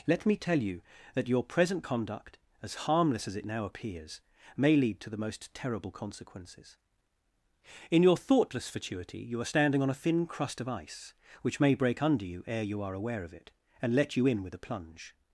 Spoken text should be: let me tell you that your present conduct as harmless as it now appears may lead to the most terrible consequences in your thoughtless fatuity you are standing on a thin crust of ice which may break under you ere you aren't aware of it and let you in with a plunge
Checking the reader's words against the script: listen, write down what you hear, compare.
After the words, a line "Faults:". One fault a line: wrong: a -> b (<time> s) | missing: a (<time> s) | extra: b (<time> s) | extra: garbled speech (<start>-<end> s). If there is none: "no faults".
let me tell you that your present conduct as harmless as it now appears may lead to the most terrible consequences in your thoughtless fatuity you are standing on a thin crust of ice which may break under you ere you are aware of it and let you in with a plunge
Faults:
wrong: aren't -> are (12.8 s)